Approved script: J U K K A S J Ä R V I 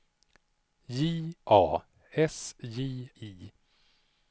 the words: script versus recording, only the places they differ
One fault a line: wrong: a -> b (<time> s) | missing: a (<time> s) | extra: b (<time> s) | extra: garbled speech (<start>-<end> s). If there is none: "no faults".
missing: U K K (1.4 s)
missing: Ä R V (3.1 s)